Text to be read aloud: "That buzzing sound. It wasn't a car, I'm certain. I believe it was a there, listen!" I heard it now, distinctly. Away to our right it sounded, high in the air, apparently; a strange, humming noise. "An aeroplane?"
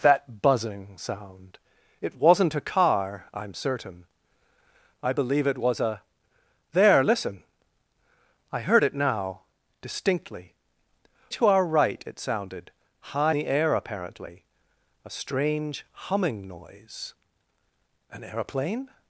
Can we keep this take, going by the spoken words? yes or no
no